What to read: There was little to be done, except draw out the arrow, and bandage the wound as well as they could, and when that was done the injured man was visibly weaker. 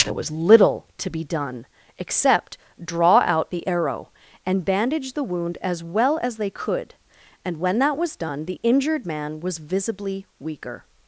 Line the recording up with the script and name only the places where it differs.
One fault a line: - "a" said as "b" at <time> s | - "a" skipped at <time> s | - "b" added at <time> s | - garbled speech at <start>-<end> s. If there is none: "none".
none